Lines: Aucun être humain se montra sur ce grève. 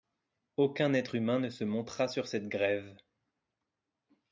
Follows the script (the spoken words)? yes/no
no